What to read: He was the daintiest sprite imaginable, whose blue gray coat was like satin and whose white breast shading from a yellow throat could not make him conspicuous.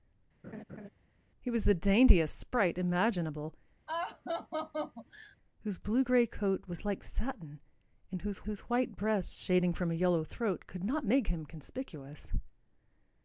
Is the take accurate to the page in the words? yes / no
no